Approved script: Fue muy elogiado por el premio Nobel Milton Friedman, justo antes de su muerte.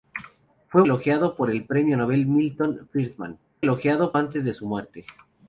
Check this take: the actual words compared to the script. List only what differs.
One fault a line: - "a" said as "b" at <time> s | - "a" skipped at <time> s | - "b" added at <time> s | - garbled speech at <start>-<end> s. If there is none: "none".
- "muy" skipped at 0.8 s
- "justo" said as "elogiado" at 3.6 s